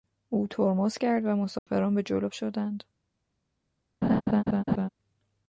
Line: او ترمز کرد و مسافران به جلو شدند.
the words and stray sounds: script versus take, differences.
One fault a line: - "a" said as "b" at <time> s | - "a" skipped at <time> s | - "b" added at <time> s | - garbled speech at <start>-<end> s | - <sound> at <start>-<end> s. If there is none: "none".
- dropout at 1.6-1.7 s
- laugh at 4.0-4.9 s